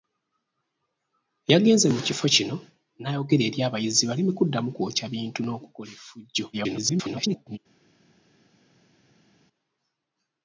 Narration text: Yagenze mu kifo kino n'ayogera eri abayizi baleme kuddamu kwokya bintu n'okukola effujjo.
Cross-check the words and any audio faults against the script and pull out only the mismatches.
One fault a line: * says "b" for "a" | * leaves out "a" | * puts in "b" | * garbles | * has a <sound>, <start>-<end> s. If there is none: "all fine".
* garbles